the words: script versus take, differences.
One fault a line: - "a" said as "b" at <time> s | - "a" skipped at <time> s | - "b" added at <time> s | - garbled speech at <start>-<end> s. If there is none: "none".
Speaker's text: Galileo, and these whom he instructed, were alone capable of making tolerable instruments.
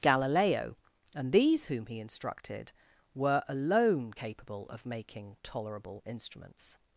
none